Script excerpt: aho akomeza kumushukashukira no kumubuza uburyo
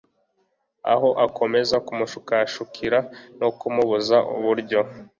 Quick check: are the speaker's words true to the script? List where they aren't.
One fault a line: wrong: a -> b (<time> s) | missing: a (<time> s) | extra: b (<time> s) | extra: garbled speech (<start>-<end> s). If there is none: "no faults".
no faults